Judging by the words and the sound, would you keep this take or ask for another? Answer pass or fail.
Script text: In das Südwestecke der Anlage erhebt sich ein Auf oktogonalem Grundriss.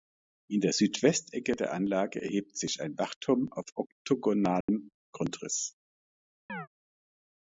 fail